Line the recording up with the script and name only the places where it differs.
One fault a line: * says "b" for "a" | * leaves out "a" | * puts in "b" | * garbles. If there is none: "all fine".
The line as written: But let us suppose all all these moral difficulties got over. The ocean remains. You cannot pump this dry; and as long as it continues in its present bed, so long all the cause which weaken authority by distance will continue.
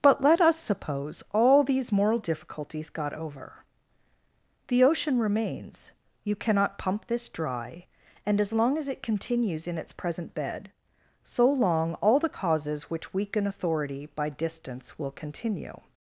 * leaves out "all"
* says "causes" for "cause"